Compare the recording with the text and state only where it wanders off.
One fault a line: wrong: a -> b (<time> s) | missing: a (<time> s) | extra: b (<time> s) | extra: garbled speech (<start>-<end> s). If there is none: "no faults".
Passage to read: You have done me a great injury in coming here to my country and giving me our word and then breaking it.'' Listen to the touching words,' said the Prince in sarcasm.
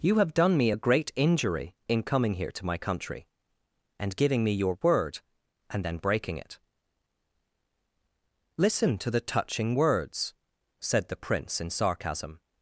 wrong: our -> your (4.5 s)